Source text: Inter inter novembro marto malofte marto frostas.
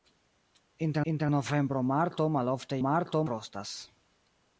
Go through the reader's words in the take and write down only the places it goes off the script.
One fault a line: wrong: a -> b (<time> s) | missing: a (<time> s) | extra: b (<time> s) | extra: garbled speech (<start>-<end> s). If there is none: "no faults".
no faults